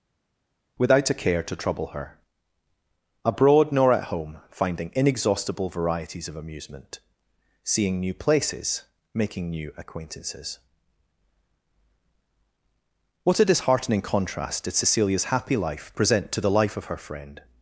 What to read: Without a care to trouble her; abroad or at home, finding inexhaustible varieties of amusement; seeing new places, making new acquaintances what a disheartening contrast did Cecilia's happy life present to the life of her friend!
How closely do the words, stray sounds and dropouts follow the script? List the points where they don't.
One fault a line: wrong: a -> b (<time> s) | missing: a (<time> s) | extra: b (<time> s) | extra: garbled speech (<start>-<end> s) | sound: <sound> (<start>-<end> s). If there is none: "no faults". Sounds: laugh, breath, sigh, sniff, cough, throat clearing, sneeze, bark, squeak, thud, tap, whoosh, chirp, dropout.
wrong: or -> nor (3.7 s)